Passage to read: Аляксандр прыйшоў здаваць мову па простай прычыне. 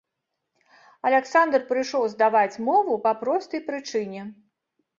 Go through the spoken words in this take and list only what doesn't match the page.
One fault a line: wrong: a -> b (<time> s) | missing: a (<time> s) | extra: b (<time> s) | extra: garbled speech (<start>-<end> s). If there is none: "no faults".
no faults